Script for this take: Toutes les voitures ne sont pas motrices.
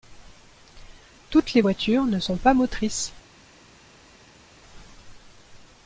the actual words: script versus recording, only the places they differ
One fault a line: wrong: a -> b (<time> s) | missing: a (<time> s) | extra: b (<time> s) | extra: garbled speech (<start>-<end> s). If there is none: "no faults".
no faults